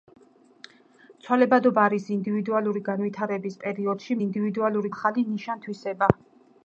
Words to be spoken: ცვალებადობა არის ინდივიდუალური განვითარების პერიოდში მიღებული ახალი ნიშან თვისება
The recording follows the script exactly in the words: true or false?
false